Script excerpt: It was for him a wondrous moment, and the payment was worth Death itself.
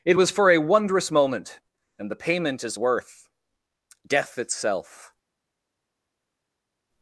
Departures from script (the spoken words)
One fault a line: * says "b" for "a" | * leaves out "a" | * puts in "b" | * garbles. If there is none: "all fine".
* leaves out "him"
* says "is" for "was"